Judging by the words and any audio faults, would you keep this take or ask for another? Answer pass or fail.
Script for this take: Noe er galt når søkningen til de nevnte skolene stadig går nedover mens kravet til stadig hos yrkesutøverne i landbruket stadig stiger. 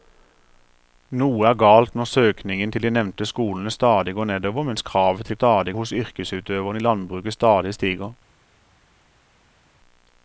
pass